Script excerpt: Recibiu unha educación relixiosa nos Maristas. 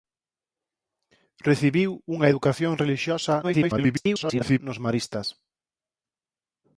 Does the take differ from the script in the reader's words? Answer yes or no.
yes